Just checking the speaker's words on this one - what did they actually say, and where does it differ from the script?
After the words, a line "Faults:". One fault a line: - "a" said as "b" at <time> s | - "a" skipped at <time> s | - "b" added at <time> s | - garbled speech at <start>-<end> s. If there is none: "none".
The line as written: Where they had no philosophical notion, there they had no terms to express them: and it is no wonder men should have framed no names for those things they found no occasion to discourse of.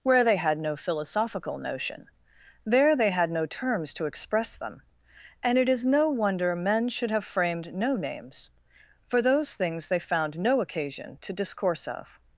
Where they had no philosophical notion, there they had no terms to express them: and it is no wonder men should have framed no names for those things they found no occasion to discourse of.
Faults:
none